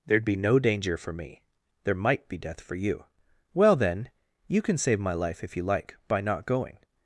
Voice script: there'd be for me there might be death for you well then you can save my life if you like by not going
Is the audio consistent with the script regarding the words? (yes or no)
no